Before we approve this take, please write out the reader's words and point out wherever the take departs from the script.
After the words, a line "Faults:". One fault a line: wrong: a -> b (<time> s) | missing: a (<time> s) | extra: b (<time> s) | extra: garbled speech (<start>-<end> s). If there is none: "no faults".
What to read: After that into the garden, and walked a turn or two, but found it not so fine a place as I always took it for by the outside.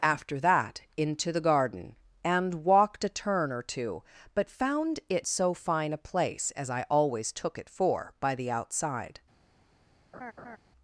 After that into the garden, and walked a turn or two, but found it so fine a place as I always took it for by the outside.
Faults:
missing: not (5.3 s)